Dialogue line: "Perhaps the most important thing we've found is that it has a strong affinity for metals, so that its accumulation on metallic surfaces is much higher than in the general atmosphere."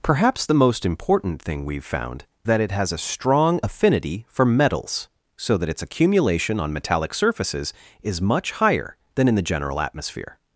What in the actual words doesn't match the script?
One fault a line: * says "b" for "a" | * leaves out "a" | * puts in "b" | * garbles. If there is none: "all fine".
* leaves out "is"